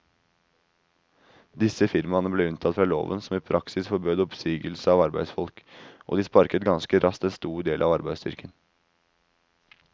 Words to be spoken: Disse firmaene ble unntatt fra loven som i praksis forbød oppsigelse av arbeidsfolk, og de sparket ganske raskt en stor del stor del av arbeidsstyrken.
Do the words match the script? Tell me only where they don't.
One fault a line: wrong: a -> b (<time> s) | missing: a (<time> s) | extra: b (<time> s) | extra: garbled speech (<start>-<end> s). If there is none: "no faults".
missing: stor del (7.9 s)